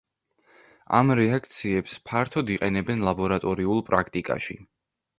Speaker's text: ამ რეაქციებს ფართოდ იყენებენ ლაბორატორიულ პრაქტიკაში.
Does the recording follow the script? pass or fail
pass